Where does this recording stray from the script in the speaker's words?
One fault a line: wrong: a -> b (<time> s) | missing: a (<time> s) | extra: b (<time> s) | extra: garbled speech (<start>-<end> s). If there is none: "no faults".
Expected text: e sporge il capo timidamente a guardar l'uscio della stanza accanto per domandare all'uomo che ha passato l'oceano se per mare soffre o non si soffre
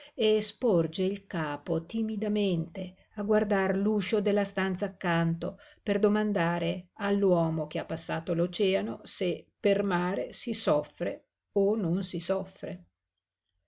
extra: si (10.3 s)